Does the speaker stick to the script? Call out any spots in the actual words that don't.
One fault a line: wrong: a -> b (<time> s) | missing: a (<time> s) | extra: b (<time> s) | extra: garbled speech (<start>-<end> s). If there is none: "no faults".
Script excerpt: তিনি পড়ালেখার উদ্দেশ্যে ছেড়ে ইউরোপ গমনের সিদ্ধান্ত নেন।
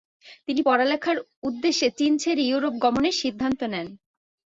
extra: চীন (2.0 s)